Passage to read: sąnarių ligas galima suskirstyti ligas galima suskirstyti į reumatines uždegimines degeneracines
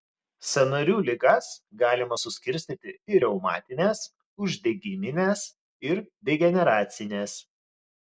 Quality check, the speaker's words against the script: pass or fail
fail